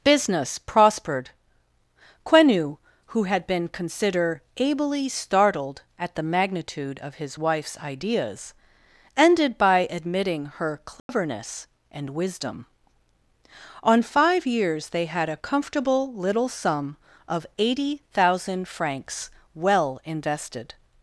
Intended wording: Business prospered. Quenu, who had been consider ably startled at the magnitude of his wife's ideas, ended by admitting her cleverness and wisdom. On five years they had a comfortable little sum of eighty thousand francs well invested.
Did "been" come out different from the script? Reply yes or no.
no